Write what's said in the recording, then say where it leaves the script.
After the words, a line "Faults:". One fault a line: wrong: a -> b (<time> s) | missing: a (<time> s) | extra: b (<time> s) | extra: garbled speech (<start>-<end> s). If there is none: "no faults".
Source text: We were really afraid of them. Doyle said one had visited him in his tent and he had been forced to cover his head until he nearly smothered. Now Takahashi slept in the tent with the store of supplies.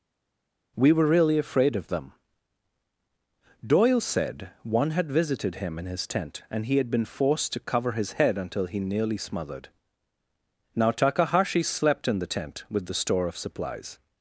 We were really afraid of them. Doyle said one had visited him in his tent and he had been forced to cover his head until he nearly smothered. Now Takahashi slept in the tent with the store of supplies.
Faults:
no faults